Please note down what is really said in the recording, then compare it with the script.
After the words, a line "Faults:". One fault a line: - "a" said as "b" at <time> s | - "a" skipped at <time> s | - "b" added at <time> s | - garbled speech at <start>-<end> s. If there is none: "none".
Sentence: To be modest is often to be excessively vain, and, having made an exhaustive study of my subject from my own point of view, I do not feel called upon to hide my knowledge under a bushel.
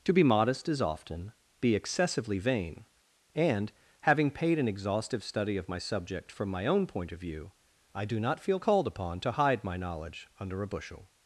To be modest is often be excessively vain, and, having paid an exhaustive study of my subject from my own point of view, I do not feel called upon to hide my knowledge under a bushel.
Faults:
- "to" skipped at 1.3 s
- "made" said as "paid" at 4.3 s